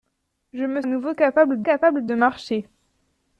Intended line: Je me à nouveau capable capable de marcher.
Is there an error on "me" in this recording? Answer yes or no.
no